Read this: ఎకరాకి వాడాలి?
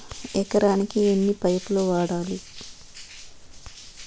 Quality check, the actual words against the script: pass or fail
fail